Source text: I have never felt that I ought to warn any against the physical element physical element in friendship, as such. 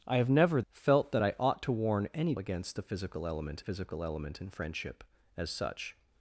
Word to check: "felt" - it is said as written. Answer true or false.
true